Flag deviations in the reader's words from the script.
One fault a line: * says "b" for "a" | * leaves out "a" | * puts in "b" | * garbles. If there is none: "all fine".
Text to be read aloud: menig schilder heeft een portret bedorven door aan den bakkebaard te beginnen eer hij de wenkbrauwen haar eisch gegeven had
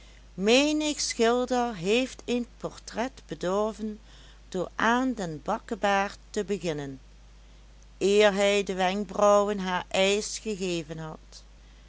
all fine